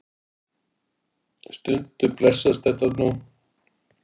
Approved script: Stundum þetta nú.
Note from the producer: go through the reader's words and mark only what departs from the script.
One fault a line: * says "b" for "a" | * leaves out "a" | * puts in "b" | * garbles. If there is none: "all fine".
* puts in "blessast"